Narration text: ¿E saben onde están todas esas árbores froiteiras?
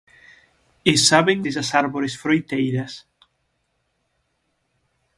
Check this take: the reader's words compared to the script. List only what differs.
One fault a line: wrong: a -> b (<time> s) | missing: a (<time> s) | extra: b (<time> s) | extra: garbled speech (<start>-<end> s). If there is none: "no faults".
missing: onde están todas (1.4 s)